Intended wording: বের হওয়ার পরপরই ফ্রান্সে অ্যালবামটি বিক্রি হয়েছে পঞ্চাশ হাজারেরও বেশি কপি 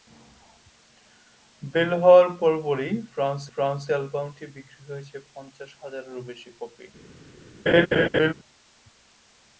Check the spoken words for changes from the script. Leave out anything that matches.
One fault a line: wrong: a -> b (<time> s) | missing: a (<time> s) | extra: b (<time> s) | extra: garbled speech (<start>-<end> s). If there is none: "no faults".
extra: ফ্রান্সে (3.5 s)